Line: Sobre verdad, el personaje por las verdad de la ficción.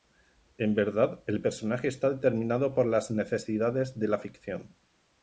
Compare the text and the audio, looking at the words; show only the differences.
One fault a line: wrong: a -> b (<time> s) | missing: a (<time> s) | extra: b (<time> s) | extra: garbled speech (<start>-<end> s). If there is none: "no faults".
wrong: Sobre -> En (0.6 s)
extra: está determinado (1.9 s)
wrong: verdad -> necesidades (3.1 s)